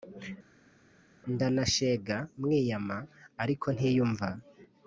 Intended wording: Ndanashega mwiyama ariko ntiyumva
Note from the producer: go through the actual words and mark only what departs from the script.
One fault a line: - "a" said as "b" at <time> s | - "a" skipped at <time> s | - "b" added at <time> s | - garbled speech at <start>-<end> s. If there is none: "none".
none